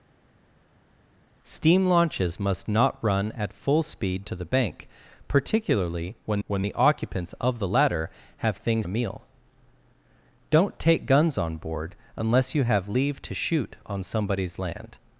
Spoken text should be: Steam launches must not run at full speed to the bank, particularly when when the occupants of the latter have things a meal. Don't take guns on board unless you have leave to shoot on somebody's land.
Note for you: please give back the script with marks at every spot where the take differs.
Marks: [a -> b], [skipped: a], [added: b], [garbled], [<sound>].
Steam launches must not run at full speed to the bank, particularly when when the occupants of the latter have things a meal. Don't take guns on board unless you have leave to shoot on somebody's land.